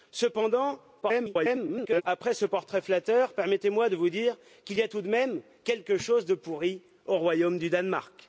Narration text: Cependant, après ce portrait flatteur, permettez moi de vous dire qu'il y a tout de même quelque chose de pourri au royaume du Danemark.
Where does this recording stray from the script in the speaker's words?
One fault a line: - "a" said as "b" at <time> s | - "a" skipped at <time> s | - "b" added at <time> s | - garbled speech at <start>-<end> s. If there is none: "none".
- garbled speech at 1.0-2.0 s